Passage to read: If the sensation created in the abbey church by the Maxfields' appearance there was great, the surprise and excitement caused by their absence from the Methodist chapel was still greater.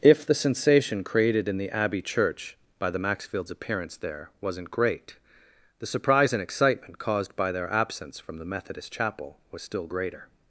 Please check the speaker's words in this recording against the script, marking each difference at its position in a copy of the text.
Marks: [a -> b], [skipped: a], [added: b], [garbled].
If the sensation created in the abbey church by the Maxfields' appearance there [was -> wasn't] great, the surprise and excitement caused by their absence from the Methodist chapel was still greater.